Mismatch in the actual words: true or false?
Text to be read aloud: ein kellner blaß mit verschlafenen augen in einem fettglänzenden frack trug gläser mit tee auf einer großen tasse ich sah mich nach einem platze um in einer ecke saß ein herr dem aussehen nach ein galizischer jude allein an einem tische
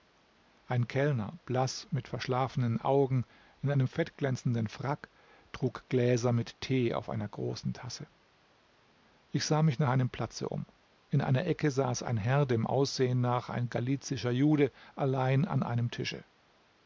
false